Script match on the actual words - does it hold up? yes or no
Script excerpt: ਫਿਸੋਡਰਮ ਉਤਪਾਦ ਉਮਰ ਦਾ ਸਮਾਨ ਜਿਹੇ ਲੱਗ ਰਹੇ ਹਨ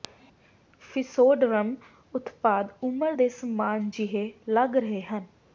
no